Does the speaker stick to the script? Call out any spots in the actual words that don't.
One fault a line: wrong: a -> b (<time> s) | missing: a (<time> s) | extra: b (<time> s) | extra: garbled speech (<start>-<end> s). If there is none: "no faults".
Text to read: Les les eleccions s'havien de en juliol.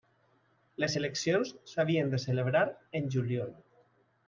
missing: les (0.9 s)
extra: celebrar (2.3 s)